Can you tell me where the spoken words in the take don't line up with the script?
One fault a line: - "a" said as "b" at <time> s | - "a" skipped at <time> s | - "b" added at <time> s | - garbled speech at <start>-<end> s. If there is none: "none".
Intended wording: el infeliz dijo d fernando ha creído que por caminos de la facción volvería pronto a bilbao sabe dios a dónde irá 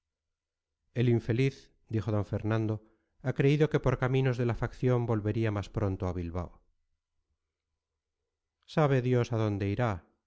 - "más" added at 5.5 s